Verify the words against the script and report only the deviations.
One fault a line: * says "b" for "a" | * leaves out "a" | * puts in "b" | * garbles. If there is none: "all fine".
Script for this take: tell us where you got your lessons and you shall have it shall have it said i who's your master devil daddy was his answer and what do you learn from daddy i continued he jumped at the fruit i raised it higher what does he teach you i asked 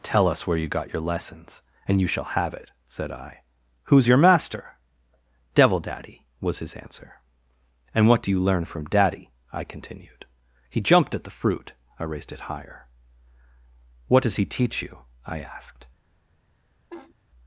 * leaves out "shall have it"